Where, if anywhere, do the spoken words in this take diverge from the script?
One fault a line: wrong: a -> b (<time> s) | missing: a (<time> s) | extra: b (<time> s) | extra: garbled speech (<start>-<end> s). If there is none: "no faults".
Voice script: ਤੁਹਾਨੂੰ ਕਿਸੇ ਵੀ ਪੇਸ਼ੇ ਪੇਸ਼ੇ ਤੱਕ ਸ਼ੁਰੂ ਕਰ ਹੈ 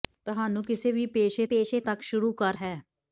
no faults